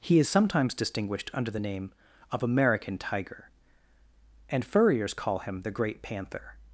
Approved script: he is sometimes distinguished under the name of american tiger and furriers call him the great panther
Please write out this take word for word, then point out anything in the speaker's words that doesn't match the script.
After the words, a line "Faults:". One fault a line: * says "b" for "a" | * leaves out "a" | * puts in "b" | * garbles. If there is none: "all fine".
he is sometimes distinguished under the name of american tiger and furriers call him the great panther
Faults:
all fine